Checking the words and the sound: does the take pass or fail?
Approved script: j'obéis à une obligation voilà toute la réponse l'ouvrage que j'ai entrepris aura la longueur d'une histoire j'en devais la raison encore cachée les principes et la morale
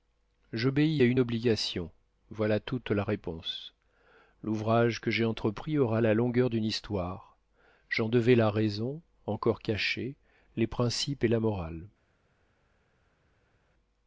pass